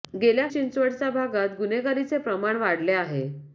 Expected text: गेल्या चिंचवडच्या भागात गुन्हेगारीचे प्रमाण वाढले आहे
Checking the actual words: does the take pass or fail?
pass